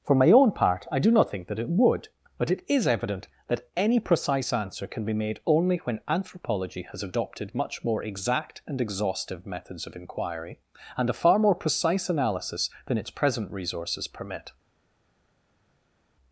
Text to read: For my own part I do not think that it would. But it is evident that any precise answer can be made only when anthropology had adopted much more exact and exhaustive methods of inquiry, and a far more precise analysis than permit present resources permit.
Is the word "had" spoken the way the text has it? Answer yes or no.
no